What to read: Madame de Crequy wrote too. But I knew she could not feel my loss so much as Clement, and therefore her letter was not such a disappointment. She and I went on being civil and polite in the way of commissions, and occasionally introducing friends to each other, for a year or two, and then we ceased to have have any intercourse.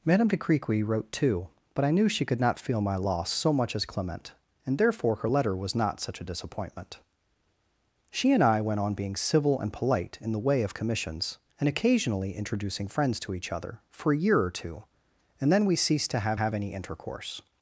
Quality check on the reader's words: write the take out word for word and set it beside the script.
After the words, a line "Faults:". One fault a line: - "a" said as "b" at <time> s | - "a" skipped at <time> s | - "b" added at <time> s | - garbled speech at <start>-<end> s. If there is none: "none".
Madame de Crequy wrote too. But I knew she could not feel my loss so much as Clement, and therefore her letter was not such a disappointment. She and I went on being civil and polite in the way of commissions, and occasionally introducing friends to each other, for a year or two, and then we ceased to have have any intercourse.
Faults:
none